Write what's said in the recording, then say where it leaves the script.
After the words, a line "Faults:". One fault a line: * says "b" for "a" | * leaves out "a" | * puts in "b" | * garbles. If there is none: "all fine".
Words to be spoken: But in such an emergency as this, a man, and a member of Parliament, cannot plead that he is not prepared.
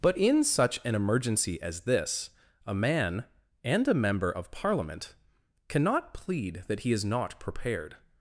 But in such an emergency as this, a man, and a member of Parliament, cannot plead that he is not prepared.
Faults:
all fine